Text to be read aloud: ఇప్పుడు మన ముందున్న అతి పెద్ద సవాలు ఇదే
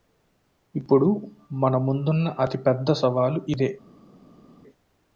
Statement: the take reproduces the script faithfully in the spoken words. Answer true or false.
true